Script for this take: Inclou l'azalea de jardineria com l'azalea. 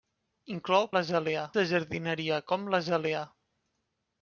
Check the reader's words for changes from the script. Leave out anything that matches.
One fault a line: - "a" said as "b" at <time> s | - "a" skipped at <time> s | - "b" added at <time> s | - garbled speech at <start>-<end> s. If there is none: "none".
none